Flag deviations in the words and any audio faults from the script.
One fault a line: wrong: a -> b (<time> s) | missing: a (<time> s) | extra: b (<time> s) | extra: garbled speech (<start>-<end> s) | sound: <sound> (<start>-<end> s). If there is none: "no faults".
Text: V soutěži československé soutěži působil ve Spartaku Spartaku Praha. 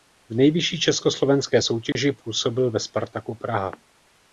wrong: soutěži -> nejvyšší (0.3 s)
sound: dropout (1.9-2.0 s)
missing: Spartaku (3.3 s)